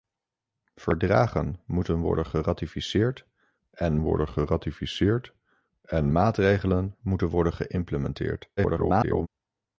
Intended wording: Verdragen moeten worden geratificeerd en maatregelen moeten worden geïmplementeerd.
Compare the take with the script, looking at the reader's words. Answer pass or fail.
fail